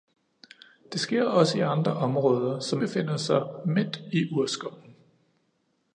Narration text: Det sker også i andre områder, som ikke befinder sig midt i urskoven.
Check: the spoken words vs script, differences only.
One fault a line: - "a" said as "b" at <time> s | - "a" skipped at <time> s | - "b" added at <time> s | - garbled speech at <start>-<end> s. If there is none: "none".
- "ikke" skipped at 2.8 s